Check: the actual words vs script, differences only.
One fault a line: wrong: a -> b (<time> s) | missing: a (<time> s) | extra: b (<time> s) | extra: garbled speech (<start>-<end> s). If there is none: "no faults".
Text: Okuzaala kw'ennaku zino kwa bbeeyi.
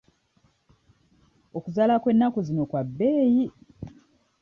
no faults